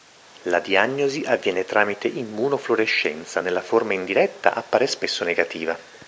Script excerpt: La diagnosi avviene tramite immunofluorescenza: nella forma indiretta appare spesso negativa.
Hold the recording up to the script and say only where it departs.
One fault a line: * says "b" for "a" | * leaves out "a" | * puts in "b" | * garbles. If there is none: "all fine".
all fine